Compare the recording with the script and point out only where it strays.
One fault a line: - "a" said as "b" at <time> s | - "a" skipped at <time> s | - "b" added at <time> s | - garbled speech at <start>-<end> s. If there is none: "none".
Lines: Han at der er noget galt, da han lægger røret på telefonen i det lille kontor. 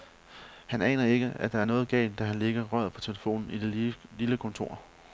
- "aner ikke" added at 0.8 s